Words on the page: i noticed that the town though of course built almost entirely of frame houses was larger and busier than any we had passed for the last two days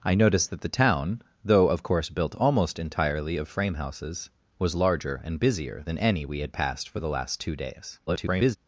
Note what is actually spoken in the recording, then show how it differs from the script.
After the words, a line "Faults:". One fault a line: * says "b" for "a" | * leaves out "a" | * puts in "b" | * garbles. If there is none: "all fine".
i noticed that the town though of course built almost entirely of frame houses was larger and busier than any we had passed for the last two days [garbled]
Faults:
* garbles